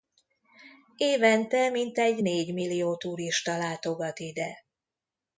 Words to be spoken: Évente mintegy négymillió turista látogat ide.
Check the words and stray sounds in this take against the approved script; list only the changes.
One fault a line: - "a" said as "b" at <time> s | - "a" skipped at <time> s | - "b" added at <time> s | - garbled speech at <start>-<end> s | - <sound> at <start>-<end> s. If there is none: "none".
none